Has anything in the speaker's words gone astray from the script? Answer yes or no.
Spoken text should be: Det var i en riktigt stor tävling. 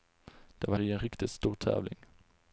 no